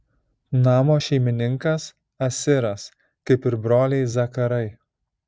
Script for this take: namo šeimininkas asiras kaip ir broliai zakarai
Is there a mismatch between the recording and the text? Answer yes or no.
no